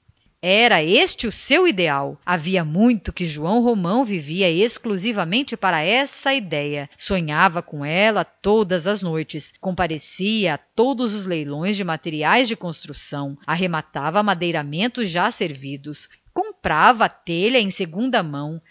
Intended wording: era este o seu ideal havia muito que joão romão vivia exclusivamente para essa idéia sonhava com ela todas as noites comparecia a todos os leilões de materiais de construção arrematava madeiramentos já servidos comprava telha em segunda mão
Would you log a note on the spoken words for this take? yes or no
no